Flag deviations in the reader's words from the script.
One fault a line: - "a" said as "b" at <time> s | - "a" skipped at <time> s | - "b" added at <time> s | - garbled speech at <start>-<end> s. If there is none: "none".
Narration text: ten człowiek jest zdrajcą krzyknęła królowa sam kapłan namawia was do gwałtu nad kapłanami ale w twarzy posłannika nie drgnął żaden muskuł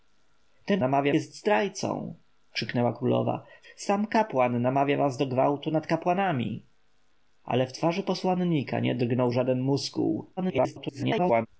- "człowiek" said as "namawia" at 0.8 s
- garbled speech at 10.4-11.5 s